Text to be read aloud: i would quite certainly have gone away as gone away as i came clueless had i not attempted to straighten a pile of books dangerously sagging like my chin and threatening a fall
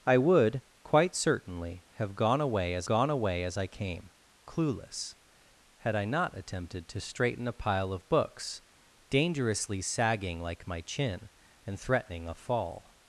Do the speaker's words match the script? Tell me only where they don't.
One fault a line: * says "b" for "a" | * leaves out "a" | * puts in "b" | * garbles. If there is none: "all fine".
all fine